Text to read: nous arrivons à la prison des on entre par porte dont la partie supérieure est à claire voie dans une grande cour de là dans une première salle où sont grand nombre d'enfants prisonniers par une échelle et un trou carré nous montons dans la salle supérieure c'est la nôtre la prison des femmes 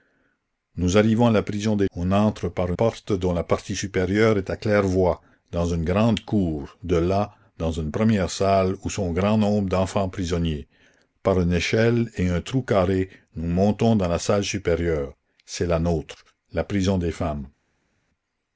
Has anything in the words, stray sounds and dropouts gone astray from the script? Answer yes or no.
no